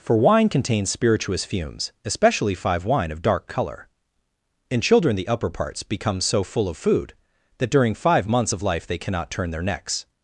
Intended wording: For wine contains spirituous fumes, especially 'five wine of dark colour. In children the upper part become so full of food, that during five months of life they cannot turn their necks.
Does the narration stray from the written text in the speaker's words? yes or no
yes